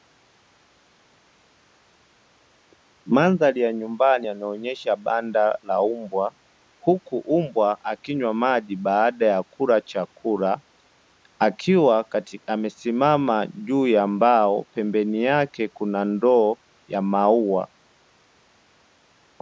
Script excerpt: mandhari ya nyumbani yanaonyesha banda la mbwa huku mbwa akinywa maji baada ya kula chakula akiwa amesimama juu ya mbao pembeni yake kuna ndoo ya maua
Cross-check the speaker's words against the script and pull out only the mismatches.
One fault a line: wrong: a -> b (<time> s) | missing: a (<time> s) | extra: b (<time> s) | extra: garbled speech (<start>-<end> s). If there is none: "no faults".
no faults